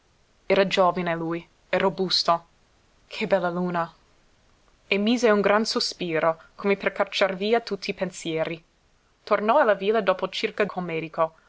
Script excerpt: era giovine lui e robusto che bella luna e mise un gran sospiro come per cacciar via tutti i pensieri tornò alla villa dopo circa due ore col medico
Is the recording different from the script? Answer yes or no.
yes